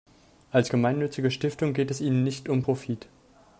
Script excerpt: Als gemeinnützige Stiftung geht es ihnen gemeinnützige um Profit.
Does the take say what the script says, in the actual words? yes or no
no